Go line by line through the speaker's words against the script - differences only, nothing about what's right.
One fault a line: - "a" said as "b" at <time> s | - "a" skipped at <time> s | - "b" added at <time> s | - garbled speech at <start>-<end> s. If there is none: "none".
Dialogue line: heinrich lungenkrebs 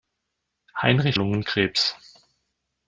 none